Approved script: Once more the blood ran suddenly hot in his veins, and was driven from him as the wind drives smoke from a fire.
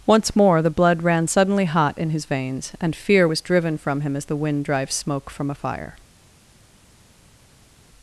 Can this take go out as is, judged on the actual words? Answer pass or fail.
fail